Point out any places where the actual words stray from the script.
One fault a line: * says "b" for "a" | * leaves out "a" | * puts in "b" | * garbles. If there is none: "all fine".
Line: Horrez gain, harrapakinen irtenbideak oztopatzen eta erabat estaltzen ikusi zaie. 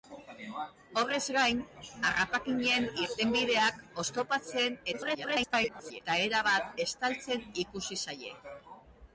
* garbles